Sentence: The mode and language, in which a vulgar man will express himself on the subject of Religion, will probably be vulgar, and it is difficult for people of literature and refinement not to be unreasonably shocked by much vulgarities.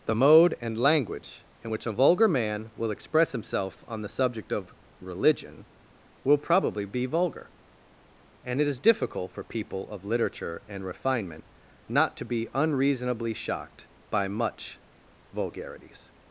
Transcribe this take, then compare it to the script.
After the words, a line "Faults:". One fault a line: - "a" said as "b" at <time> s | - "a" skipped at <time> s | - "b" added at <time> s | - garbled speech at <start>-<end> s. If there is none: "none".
The mode and language, in which a vulgar man will express himself on the subject of Religion, will probably be vulgar, and it is difficult for people of literature and refinement not to be unreasonably shocked by much vulgarities.
Faults:
none